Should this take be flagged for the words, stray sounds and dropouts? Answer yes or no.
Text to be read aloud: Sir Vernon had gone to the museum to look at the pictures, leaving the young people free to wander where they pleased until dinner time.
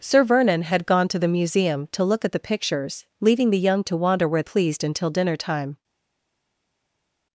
yes